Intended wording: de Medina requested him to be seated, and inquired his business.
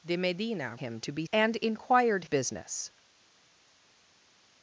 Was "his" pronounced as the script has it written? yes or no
no